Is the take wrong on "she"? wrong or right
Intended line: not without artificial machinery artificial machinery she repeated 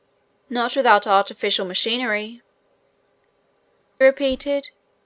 wrong